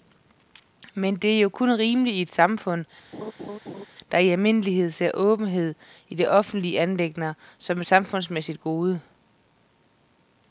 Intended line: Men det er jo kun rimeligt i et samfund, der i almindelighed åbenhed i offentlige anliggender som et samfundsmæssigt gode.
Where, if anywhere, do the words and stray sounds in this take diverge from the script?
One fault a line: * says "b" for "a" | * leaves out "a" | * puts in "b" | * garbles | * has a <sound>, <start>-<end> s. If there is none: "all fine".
* has a laugh, 3.1-3.9 s
* puts in "ser"